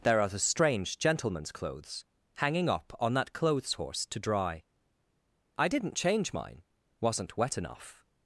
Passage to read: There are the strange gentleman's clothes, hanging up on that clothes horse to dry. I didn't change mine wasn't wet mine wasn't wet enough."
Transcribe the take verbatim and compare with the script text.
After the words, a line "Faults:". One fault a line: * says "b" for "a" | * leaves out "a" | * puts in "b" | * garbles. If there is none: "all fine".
There are the strange gentleman's clothes, hanging up on that clothes horse to dry. I didn't change mine wasn't wet enough."
Faults:
* leaves out "mine wasn't wet"